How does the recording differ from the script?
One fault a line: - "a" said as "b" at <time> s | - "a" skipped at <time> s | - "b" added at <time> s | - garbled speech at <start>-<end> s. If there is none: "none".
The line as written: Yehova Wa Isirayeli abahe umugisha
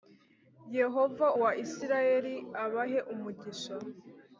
none